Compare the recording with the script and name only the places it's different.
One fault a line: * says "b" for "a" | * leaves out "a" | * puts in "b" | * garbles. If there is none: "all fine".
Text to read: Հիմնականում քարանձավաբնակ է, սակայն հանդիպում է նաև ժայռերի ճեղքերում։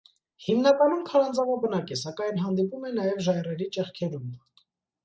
all fine